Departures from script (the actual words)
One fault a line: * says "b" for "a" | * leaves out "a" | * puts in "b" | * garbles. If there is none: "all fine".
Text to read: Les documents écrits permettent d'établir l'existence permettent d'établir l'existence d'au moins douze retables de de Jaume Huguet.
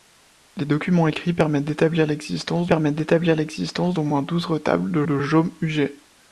all fine